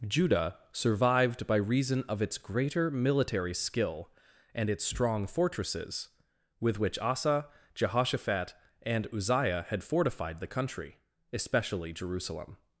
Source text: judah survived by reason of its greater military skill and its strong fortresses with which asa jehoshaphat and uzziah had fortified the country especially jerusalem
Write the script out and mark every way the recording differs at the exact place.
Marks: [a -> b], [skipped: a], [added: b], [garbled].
judah survived by reason of its greater military skill and its strong fortresses with which asa jehoshaphat and uzziah had fortified the country especially jerusalem